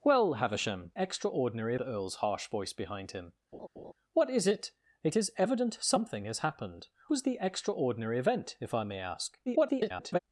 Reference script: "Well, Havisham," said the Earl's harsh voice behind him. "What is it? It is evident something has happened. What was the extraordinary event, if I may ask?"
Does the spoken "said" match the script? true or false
false